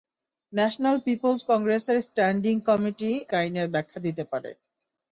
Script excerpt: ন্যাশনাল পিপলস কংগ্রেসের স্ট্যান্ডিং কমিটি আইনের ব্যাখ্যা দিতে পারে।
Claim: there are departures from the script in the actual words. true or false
false